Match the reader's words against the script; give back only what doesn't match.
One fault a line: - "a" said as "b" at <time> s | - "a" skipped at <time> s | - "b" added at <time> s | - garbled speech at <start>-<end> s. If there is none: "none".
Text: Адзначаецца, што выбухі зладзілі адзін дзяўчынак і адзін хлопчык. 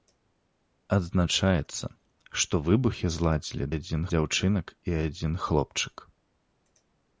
none